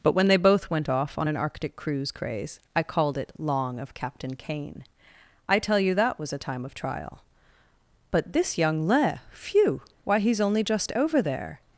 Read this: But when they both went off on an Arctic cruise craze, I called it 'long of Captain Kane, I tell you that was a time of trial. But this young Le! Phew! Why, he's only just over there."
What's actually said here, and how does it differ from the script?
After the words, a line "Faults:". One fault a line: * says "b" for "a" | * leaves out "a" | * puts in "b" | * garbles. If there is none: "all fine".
But when they both went off on an Arctic cruise craze, I called it 'long of Captain Kane, I tell you that was a time of trial. But this young Le! Phew! Why, he's only just over there."
Faults:
all fine